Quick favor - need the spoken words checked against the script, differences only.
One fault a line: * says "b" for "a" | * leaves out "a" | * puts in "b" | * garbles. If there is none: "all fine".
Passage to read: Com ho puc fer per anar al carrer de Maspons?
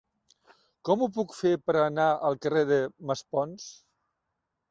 all fine